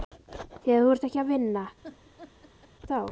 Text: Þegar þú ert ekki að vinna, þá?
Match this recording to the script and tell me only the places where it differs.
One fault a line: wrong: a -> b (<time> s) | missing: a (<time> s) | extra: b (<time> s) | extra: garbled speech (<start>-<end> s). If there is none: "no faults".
no faults